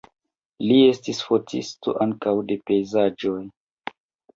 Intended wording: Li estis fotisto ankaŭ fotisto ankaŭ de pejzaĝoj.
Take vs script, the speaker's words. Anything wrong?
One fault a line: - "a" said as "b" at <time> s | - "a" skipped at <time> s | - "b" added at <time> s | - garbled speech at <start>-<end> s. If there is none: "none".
- "fotisto ankaŭ" skipped at 2.4 s